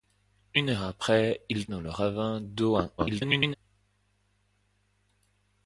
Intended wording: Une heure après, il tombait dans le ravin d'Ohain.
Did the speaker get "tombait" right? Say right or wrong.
wrong